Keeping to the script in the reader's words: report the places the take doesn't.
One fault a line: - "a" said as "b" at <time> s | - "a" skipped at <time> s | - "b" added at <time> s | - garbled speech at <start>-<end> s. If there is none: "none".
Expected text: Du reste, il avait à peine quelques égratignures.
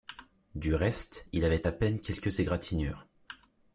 none